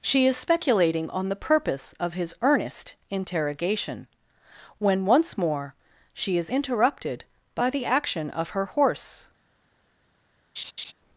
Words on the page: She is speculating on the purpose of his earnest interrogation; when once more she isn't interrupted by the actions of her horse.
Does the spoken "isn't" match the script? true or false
false